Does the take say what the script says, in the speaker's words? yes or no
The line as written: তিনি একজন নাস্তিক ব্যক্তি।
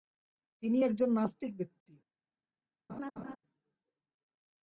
yes